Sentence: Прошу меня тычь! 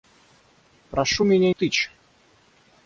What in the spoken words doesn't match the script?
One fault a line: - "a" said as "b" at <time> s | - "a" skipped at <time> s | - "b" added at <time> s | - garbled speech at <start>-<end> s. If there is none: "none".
none